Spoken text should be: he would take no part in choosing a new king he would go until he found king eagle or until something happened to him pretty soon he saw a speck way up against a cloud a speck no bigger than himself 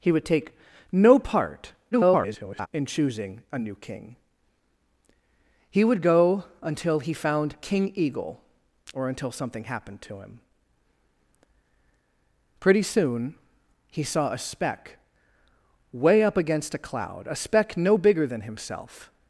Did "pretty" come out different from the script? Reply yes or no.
no